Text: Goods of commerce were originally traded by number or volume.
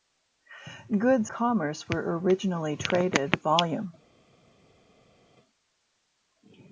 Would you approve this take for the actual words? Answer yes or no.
no